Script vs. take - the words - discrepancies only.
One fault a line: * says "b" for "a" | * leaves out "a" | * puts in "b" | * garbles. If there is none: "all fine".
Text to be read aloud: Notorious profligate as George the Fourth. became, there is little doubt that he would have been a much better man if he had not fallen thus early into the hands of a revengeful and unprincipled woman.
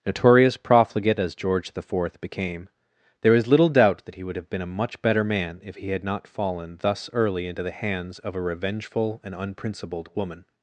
all fine